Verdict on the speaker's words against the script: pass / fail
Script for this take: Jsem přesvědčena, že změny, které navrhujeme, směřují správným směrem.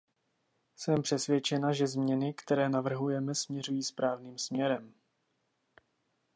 pass